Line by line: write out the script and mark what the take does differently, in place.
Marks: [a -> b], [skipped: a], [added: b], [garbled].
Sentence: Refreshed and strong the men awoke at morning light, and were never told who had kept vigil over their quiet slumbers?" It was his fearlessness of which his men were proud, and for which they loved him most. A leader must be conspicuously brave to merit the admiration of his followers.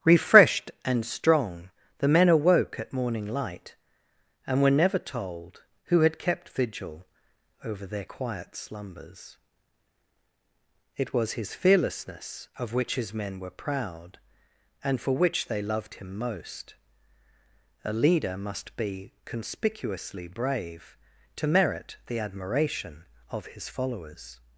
Refreshed and strong the men awoke at morning light, and were never told who had kept vigil over their quiet slumbers?" It was his fearlessness of which his men were proud, and for which they loved him most. A leader must be conspicuously brave to merit the admiration of his followers.